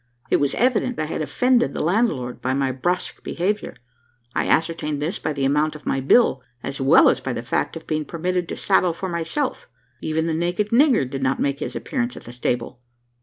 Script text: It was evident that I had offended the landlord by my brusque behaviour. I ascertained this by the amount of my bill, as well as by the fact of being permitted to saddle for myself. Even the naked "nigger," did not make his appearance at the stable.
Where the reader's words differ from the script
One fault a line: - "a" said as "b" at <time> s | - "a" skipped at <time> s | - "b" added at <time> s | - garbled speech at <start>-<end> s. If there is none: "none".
- "that" skipped at 1.0 s